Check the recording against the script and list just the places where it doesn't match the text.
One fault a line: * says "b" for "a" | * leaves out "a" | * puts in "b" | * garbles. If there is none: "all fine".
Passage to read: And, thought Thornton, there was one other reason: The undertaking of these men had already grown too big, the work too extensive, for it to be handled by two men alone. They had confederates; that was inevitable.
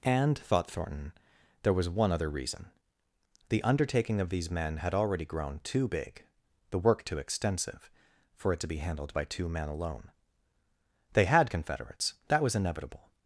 all fine